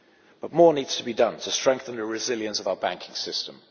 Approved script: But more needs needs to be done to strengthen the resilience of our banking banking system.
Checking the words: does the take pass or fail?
fail